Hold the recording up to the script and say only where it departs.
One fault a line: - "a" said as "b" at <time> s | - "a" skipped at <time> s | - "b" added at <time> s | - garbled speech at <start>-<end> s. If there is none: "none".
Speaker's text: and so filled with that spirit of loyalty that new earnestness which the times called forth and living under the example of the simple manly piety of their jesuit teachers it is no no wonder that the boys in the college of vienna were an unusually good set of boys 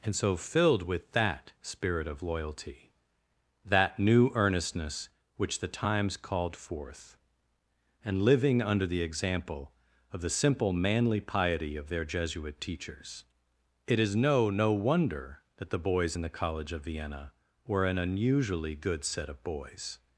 none